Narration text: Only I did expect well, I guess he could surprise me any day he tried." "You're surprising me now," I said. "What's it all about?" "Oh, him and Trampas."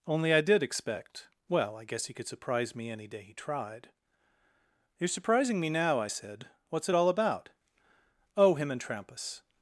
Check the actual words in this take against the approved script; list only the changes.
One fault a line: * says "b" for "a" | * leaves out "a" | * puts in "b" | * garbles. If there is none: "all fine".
all fine